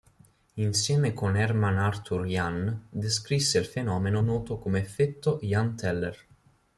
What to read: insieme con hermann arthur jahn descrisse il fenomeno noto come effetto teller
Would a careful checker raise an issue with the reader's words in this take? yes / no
yes